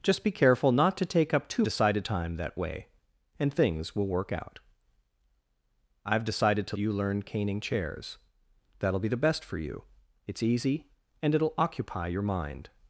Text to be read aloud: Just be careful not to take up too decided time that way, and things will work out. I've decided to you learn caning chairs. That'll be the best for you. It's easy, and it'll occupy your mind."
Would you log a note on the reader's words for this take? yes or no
no